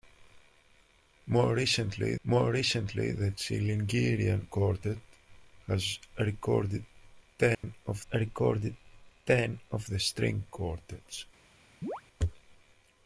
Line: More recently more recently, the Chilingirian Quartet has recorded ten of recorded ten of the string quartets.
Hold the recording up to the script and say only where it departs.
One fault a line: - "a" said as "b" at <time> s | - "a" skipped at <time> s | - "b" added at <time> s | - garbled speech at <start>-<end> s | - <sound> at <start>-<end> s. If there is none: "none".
- dropout at 7.5-7.6 s
- chirp at 11.8-12.0 s